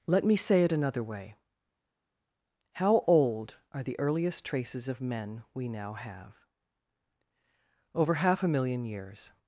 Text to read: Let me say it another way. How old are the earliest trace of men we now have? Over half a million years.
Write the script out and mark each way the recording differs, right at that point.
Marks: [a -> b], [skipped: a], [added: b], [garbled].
Let me say it another way. How old are the earliest [trace -> traces] of men we now have? Over half a million years.